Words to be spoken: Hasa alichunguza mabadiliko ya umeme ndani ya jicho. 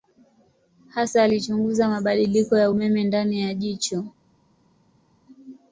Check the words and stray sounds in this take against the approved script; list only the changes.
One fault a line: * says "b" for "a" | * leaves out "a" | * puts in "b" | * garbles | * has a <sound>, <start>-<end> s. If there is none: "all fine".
all fine